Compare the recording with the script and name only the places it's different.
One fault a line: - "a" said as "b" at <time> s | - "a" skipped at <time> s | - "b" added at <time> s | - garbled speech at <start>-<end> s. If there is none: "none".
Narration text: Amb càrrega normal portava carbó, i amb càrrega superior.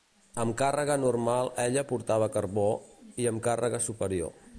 - "ella" added at 1.6 s